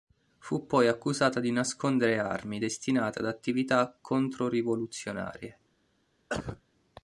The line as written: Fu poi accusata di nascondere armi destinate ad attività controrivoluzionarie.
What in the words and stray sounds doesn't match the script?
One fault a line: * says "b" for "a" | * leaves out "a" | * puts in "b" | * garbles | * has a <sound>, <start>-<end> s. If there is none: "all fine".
* has a cough, 6.3-6.6 s